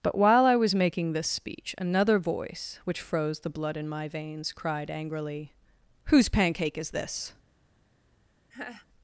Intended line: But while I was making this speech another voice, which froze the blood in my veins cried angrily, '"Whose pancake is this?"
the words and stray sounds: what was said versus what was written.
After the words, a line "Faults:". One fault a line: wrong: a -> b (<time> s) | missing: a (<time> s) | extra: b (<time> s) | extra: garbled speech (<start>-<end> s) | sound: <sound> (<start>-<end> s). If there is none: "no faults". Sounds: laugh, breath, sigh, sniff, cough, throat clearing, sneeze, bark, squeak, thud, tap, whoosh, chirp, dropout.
But while I was making this speech another voice, which froze the blood in my veins cried angrily, '"Whose pancake is this?"
Faults:
sound: laugh (8.5-8.9 s)